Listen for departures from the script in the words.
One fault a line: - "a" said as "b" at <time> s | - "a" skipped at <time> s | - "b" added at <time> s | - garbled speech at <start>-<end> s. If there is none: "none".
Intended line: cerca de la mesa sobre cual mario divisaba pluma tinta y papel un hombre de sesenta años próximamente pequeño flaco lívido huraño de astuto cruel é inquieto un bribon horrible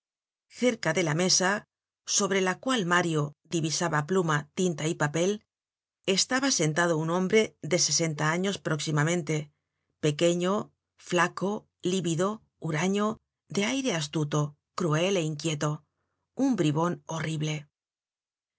- "la" added at 2.4 s
- "estaba sentado" added at 6.1 s
- "aire" added at 13.7 s